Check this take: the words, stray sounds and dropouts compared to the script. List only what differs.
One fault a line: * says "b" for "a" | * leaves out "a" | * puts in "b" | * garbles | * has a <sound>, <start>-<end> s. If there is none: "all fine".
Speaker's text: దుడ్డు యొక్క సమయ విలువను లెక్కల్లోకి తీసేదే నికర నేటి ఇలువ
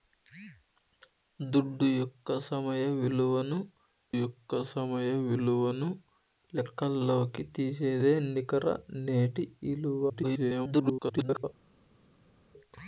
* puts in "యొక్క సమయ విలువను"
* garbles